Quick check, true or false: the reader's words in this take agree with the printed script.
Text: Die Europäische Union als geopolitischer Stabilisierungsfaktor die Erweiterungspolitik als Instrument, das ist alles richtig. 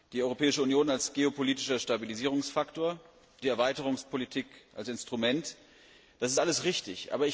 true